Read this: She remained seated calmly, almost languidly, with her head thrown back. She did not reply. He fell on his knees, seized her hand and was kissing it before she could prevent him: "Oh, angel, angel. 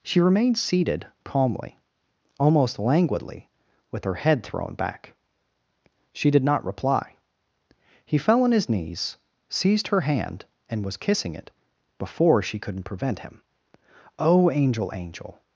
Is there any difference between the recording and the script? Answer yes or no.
yes